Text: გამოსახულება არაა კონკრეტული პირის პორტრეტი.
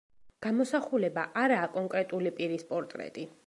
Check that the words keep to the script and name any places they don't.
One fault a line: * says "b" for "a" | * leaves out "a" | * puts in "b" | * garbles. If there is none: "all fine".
all fine